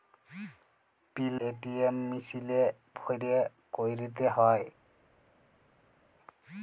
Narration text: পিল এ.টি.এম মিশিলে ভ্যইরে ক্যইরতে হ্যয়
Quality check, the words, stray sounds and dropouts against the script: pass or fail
pass